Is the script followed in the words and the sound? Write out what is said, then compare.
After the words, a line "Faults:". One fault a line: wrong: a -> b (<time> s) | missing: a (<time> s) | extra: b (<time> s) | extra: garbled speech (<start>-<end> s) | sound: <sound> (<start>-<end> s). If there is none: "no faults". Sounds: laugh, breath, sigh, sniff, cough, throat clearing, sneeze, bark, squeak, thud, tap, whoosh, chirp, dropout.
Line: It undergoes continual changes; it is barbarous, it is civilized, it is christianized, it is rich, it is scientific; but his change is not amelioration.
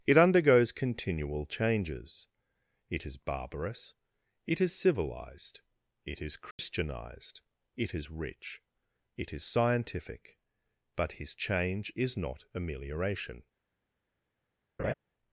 It undergoes continual changes; it is barbarous, it is civilized, it is christianized, it is rich, it is scientific; but his change is not amelioration.
Faults:
sound: dropout (6.5-6.6 s)
sound: laugh (14.8-14.9 s)